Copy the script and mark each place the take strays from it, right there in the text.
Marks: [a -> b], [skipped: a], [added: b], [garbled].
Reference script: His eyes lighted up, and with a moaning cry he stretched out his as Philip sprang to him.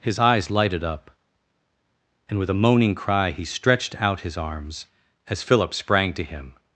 His eyes lighted up, and with a moaning cry he stretched out his [added: arms] as Philip sprang to him.